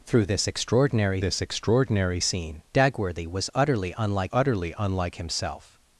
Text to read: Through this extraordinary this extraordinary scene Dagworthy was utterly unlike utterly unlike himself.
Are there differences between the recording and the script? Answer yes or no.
no